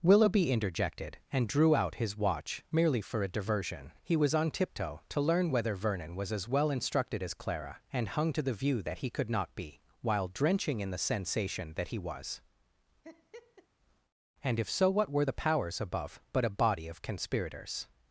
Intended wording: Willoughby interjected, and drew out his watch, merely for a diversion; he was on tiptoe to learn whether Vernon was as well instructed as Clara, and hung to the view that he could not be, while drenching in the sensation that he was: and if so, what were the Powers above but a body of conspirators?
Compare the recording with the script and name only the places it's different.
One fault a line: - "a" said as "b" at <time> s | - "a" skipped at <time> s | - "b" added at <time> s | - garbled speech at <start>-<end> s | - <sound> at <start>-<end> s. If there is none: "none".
- laugh at 13.0-13.7 s